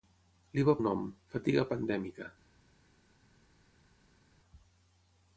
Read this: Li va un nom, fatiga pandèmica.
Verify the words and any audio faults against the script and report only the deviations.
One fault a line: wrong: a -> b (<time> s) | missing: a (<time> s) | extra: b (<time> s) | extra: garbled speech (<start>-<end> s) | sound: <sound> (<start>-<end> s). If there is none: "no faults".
no faults